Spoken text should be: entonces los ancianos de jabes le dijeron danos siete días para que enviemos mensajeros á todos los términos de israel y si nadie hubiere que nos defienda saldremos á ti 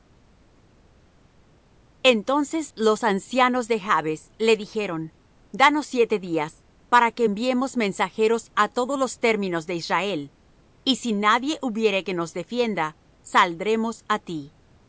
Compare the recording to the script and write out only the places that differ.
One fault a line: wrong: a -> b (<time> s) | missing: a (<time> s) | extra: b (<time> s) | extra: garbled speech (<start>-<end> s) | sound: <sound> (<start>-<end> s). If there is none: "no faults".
no faults